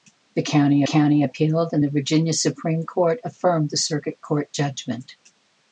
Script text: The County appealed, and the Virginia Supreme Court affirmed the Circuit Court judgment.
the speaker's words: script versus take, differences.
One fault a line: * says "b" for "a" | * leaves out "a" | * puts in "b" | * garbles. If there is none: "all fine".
* puts in "County"